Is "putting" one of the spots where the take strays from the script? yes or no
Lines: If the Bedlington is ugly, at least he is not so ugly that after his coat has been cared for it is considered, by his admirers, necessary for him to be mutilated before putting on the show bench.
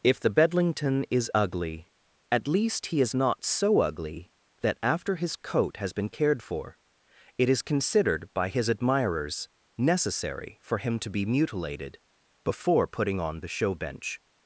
no